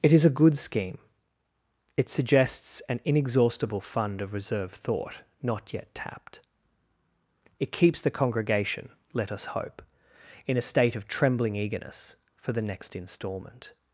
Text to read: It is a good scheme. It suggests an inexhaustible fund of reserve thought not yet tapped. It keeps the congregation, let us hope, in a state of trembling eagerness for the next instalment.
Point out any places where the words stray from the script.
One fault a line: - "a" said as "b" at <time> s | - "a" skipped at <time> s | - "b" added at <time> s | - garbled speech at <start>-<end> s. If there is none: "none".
none